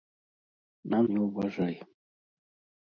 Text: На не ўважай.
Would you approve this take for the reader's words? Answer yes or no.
yes